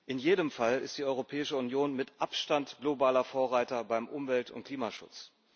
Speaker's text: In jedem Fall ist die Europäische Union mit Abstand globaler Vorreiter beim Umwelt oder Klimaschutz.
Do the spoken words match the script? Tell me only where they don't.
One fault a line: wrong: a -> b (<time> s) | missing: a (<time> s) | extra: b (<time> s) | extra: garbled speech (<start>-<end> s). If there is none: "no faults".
wrong: oder -> und (4.5 s)